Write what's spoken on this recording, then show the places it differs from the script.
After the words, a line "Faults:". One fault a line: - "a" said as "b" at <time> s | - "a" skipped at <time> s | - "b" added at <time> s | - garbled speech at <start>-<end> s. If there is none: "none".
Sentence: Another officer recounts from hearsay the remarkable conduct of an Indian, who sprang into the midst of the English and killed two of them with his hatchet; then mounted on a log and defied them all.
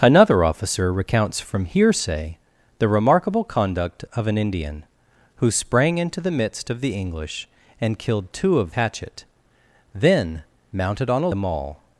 Another officer recounts from hearsay the remarkable conduct of an Indian, who sprang into the midst of the English and killed two of hatchet; then mounted on a them all.
Faults:
- "them with his" skipped at 8.7 s
- "log and defied" skipped at 11.3 s